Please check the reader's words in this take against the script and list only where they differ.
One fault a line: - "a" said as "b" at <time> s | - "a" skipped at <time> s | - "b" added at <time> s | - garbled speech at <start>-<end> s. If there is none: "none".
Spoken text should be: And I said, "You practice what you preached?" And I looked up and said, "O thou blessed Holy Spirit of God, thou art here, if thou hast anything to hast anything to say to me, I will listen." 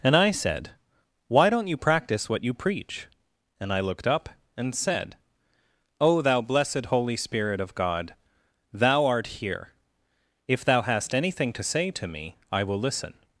- "Why don't" added at 1.3 s
- "preached" said as "preach" at 2.5 s
- "hast anything to" skipped at 11.6 s